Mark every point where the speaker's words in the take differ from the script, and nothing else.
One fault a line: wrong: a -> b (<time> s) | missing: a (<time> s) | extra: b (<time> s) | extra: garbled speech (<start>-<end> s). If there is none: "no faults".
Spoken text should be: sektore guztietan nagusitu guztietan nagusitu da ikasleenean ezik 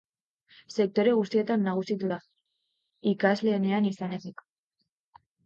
missing: guztietan nagusitu (2.1 s)
extra: izan (3.9 s)